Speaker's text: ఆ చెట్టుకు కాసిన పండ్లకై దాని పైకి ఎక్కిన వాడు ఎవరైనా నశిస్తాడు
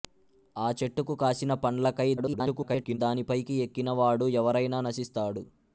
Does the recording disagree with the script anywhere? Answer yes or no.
yes